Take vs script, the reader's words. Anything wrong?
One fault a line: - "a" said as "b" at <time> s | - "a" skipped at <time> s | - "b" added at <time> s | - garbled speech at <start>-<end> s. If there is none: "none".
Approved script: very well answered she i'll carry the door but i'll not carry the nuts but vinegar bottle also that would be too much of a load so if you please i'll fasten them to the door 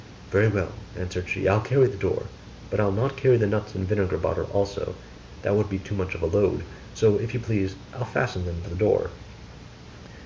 - "but" said as "and" at 3.7 s